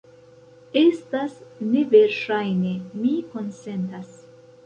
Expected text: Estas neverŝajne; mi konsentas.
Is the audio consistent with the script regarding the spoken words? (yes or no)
yes